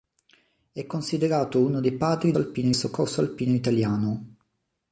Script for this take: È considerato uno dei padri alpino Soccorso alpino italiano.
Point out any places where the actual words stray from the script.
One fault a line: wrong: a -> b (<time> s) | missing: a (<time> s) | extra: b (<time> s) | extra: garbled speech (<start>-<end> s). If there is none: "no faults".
no faults